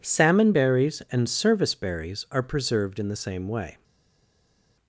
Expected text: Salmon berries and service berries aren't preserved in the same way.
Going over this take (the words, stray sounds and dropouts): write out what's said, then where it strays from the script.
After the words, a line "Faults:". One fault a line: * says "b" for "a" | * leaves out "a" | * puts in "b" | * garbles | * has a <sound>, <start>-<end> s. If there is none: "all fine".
Salmon berries and service berries are preserved in the same way.
Faults:
* says "are" for "aren't"